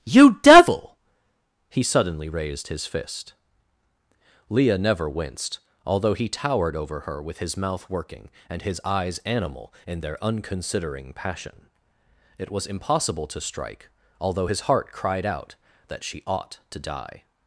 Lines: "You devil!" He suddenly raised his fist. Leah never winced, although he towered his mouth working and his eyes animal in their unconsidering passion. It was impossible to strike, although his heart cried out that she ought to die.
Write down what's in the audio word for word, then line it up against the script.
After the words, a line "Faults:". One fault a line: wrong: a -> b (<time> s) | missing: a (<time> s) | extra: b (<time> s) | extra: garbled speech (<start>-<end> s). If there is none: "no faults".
"You devil!" He suddenly raised his fist. Leah never winced, although he towered over her with his mouth working and his eyes animal in their unconsidering passion. It was impossible to strike, although his heart cried out that she ought to die.
Faults:
extra: over her with (6.8 s)